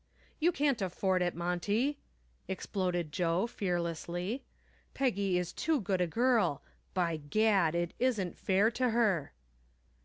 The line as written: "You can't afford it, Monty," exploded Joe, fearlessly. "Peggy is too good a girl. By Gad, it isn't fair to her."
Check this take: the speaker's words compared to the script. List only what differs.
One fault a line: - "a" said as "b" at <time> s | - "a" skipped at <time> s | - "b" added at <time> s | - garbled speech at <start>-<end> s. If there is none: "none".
none